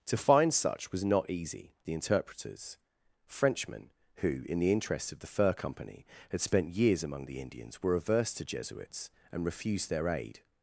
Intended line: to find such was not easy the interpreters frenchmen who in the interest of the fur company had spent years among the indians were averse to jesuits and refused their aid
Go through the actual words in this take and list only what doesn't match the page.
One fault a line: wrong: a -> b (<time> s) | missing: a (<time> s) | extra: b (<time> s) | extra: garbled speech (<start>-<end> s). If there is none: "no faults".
no faults